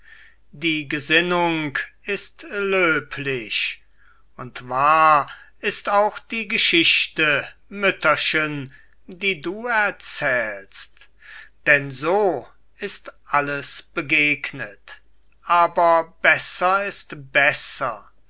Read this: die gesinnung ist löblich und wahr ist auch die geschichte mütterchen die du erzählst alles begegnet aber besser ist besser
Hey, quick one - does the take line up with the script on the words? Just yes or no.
no